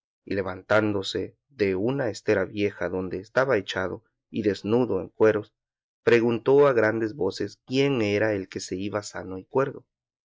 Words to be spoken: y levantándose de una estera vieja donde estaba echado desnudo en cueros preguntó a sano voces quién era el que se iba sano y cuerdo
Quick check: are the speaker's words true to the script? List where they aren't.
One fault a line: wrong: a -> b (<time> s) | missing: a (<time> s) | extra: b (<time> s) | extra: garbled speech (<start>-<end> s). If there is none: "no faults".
extra: y (4.3 s)
wrong: sano -> grandes (6.7 s)